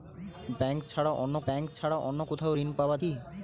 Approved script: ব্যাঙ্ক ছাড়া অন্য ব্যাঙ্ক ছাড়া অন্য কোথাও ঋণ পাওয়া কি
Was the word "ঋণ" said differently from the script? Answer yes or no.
no